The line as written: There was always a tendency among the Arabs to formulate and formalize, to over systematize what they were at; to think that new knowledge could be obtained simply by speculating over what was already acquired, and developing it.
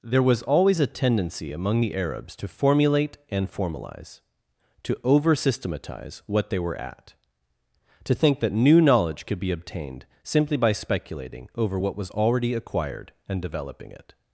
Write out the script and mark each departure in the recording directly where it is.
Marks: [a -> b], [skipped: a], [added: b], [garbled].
There was always a tendency among the Arabs to formulate and formalize, to over systematize what they were at; to think that new knowledge could be obtained simply by speculating over what was already acquired, and developing it.